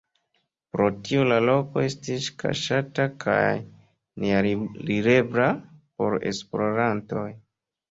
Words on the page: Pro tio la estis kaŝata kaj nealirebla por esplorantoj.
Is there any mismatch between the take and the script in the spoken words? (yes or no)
yes